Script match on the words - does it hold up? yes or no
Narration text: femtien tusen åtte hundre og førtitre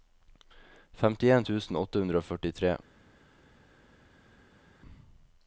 yes